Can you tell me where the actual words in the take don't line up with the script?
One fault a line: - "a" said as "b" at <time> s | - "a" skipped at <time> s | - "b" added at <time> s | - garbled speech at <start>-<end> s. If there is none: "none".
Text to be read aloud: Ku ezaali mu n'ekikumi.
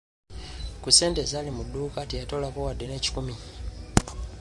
- "ssente" added at 0.9 s
- "dduuka teyatoolako wadde" added at 1.7 s